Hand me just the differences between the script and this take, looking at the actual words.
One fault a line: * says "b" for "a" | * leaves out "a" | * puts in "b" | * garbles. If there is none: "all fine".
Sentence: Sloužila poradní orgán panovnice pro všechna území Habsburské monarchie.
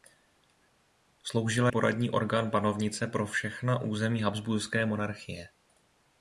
all fine